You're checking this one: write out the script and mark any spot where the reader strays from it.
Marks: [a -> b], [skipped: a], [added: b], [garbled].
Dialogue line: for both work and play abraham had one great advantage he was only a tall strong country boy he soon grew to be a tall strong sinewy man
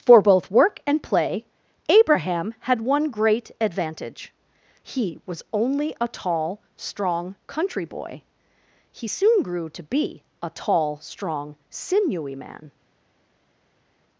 for both work and play abraham had one great advantage he was only a tall strong country boy he soon grew to be a tall strong sinewy man